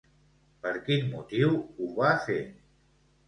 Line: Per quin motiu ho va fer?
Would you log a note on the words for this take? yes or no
no